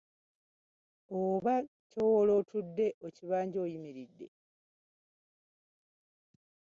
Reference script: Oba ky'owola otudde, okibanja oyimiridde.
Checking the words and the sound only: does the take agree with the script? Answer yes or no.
yes